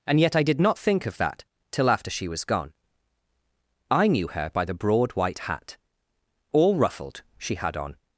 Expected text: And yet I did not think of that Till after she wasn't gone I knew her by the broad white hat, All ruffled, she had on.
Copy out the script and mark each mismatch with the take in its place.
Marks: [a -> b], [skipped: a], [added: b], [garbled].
And yet I did not think of that Till after she [wasn't -> was] gone I knew her by the broad white hat, All ruffled, she had on.